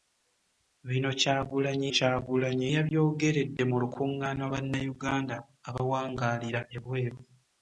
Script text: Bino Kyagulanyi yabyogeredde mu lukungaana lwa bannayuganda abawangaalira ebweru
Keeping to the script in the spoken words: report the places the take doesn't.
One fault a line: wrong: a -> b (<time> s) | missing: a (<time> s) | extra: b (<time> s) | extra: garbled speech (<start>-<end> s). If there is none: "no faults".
extra: Kyagulanyi (1.9 s)
missing: lwa (4.4 s)